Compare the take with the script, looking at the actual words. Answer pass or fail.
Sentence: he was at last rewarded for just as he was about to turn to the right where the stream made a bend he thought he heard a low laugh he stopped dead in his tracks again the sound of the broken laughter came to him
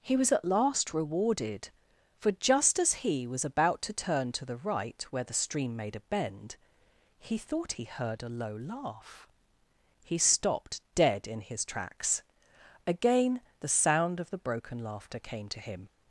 pass